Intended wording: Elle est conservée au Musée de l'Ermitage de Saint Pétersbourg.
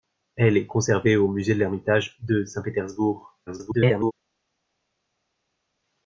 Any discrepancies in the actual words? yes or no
yes